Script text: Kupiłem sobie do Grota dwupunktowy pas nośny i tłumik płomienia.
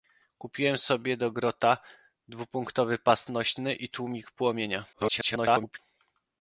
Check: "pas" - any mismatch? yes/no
no